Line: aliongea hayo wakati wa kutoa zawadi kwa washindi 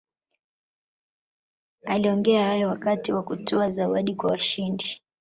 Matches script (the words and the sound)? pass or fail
pass